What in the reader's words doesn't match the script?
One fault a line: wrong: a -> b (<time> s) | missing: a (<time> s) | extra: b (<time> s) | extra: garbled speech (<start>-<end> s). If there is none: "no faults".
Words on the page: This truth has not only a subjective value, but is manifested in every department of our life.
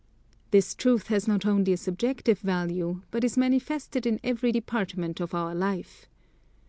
no faults